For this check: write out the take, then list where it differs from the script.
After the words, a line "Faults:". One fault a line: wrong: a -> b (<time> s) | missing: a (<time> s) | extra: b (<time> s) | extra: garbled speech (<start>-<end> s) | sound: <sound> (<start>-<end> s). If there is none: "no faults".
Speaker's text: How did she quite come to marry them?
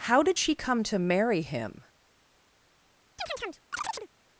How did she come to marry him?
Faults:
missing: quite (0.6 s)
wrong: them -> him (1.4 s)
sound: chirp (3.2-4.1 s)